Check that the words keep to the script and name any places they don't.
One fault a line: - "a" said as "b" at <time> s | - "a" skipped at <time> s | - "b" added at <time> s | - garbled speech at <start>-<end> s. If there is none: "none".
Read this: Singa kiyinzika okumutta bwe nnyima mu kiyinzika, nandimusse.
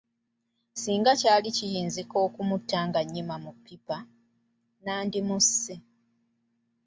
- "kyali" added at 1.2 s
- "bwe" said as "nga" at 2.9 s
- "kiyinzika" said as "ppipa" at 3.5 s